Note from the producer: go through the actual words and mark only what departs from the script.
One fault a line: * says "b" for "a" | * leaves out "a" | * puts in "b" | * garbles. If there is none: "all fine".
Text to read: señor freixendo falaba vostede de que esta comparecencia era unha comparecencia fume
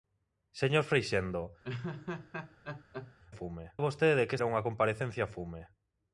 * says "fume" for "falaba"
* leaves out "esta comparecencia"